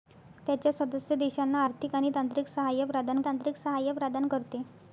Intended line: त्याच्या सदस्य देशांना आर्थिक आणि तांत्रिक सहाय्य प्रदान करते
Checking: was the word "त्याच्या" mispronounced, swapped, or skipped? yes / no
no